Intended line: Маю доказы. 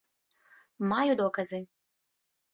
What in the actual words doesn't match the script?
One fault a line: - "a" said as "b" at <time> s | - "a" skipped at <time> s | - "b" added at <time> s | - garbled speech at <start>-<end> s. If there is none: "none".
none